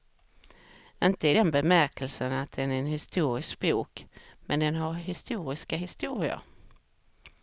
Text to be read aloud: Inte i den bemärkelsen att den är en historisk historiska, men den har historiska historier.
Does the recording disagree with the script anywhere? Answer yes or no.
yes